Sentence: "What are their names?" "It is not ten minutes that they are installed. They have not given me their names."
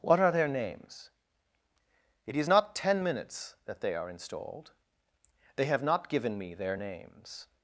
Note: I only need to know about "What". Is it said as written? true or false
true